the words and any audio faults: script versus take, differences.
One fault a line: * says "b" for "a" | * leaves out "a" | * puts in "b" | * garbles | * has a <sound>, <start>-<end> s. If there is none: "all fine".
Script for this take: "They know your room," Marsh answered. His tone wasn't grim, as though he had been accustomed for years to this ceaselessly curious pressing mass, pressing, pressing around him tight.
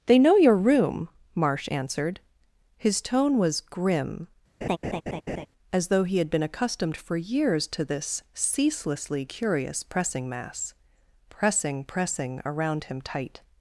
* says "was" for "wasn't"
* has a laugh, 4.6-5.5 s